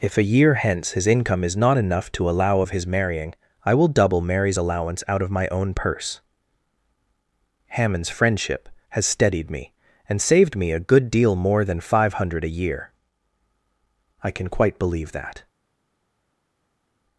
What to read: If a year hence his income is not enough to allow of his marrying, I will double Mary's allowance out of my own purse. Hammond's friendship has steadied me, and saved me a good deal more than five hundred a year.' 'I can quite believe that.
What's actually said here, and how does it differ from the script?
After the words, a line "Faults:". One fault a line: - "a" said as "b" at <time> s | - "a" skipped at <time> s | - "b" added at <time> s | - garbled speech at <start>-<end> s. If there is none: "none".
If a year hence his income is not enough to allow of his marrying, I will double Mary's allowance out of my own purse. Hammond's friendship has steadied me, and saved me a good deal more than five hundred a year.' 'I can quite believe that.
Faults:
none